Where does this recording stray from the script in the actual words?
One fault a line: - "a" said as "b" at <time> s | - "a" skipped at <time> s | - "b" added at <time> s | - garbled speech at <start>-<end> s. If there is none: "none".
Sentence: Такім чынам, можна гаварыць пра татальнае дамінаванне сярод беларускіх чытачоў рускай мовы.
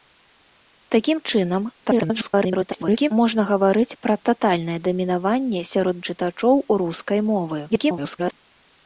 - garbled speech at 1.8-3.1 s
- "беларускіх" skipped at 6.0 s
- garbled speech at 7.7-8.3 s